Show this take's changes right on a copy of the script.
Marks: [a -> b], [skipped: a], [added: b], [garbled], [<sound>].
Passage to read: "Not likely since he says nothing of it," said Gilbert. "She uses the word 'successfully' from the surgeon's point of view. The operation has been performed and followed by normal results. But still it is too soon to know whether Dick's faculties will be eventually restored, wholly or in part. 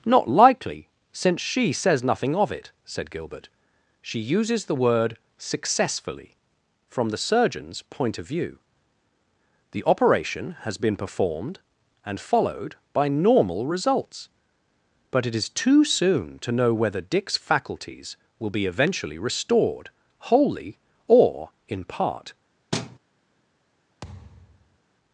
"Not likely since [he -> she] says nothing of it," said Gilbert. "She uses the word 'successfully' from the surgeon's point of view. The operation has been performed and followed by normal results. But [skipped: still] it is too soon to know whether Dick's faculties will be eventually restored, wholly or in part. [thud] [thud]